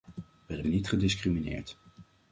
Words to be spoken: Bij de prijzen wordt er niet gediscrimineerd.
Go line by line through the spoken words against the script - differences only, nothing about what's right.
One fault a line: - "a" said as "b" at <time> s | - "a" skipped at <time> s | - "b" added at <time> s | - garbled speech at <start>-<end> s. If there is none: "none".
- "prijzen wordt" skipped at 0.6 s